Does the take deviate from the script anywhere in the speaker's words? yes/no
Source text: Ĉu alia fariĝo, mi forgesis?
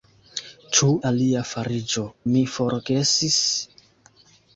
no